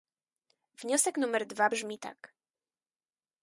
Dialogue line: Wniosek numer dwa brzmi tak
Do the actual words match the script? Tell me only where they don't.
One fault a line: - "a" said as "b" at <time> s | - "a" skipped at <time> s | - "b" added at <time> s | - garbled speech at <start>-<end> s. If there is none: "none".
none